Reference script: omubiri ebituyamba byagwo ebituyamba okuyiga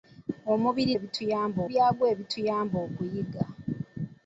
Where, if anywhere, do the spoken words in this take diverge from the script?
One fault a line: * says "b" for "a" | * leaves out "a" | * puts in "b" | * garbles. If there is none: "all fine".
all fine